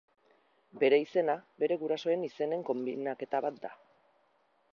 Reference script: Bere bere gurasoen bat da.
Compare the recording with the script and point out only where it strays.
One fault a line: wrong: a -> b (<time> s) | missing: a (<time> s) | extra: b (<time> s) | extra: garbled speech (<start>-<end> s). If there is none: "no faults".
extra: izena (1.0 s)
extra: izenen konbinaketa (2.3 s)